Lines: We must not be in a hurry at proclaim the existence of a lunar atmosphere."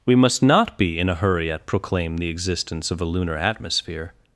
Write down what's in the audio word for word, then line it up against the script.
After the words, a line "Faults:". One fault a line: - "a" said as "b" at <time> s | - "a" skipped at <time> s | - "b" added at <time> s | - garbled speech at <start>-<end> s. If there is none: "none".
We must not be in a hurry at proclaim the existence of a lunar atmosphere."
Faults:
none